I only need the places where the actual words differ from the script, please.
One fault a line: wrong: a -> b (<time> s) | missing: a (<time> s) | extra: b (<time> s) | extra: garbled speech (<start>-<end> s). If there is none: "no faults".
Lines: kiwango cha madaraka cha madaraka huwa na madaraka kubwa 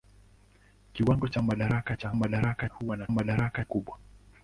no faults